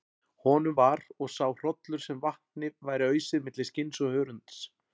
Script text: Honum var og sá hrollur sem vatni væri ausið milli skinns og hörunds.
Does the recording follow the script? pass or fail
pass